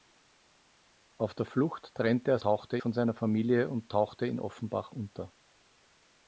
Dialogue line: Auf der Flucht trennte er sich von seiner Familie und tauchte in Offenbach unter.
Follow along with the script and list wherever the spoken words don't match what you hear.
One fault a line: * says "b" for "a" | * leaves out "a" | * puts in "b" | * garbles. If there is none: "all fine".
* says "tauchte" for "sich"